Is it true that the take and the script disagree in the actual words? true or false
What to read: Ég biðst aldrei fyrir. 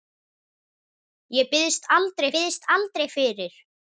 true